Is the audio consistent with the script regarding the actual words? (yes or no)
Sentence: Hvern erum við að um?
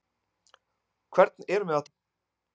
yes